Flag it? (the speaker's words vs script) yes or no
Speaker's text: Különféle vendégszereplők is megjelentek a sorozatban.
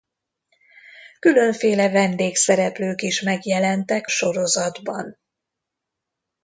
yes